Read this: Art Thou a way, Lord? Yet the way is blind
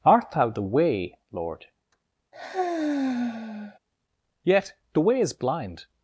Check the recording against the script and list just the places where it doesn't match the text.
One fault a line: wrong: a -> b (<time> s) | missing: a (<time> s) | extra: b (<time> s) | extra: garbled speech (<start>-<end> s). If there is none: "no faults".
wrong: a -> the (0.5 s)